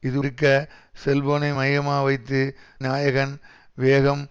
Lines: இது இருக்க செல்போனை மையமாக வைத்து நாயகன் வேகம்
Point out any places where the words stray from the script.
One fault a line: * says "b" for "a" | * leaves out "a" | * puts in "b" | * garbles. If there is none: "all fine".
all fine